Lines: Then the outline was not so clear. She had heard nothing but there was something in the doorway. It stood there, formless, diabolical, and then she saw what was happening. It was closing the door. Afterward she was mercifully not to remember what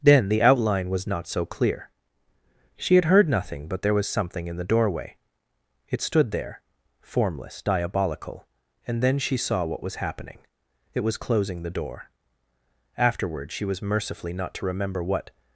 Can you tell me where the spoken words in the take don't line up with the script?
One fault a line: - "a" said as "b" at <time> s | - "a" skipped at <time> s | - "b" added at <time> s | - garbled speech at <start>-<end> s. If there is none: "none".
none